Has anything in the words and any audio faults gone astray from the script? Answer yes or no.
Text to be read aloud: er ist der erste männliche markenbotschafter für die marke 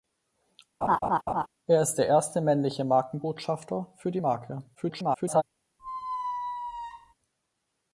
yes